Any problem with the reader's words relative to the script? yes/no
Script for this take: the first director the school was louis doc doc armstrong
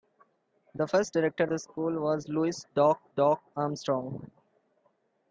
no